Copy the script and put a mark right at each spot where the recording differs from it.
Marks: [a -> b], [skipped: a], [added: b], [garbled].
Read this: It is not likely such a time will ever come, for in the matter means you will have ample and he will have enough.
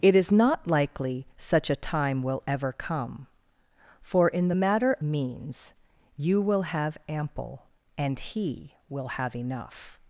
It is not likely such a time will ever come, for in the matter means you will have ample and he will have enough.